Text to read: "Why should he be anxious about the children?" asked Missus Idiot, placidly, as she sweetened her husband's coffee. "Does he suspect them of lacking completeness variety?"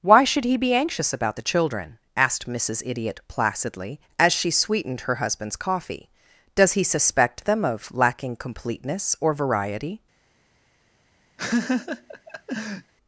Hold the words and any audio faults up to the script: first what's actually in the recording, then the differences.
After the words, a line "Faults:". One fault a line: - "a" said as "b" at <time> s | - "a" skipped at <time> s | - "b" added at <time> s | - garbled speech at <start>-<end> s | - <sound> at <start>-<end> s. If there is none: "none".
"Why should he be anxious about the children?" asked Missus Idiot, placidly, as she sweetened her husband's coffee. "Does he suspect them of lacking completeness or variety?"
Faults:
- "or" added at 9.2 s
- laugh at 11.4-12.9 s